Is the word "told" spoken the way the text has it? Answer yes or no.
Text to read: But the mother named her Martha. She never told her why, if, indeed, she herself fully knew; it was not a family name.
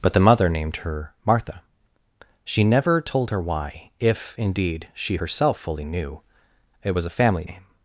yes